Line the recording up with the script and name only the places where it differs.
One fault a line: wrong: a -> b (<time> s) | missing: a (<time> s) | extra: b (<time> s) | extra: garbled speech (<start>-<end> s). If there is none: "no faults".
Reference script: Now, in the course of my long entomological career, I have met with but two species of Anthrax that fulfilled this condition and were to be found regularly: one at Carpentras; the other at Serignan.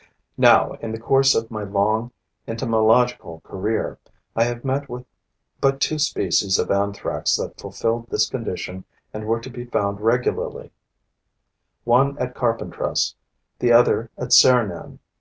no faults